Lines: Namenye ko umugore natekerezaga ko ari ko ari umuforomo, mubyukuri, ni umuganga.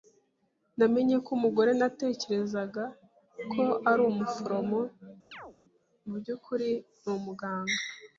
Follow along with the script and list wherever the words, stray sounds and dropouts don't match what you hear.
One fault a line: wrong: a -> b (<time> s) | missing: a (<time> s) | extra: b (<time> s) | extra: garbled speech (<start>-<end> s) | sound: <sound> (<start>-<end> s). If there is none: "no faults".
missing: ko ari (4.0 s)
sound: chirp (5.3-5.6 s)